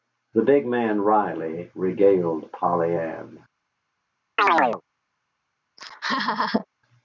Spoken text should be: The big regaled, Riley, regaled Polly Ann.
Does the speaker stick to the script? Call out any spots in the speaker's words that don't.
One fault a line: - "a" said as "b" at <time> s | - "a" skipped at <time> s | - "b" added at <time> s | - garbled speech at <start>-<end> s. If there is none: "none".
- "regaled" said as "man" at 0.7 s